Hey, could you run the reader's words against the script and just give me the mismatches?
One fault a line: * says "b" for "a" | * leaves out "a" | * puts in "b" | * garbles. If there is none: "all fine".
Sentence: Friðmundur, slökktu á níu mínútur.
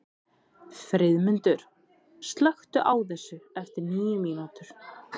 * puts in "þessu eftir"